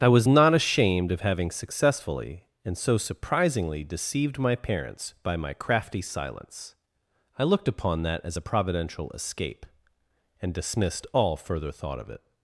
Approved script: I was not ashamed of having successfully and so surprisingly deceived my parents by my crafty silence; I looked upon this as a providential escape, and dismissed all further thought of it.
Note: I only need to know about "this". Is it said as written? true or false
false